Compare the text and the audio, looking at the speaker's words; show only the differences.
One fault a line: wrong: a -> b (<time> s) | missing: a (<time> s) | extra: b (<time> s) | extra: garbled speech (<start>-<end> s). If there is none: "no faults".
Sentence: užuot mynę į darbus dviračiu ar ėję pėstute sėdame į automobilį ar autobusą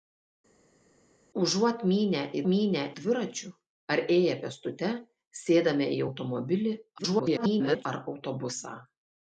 wrong: darbus -> mynę (2.5 s)
extra: garbled speech (7.0-7.9 s)